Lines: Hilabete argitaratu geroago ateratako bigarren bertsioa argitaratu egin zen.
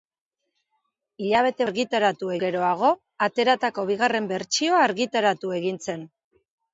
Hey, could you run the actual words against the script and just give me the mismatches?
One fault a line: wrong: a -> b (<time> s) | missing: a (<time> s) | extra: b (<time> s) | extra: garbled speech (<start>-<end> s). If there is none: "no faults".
no faults